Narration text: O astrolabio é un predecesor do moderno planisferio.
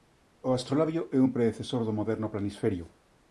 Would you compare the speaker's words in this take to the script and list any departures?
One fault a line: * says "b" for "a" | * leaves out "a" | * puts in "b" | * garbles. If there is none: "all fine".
all fine